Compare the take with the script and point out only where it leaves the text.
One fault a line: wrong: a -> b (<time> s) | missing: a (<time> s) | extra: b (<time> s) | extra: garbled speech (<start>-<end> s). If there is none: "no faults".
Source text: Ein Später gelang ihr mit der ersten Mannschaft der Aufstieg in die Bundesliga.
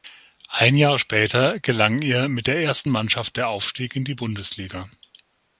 extra: Jahr (0.8 s)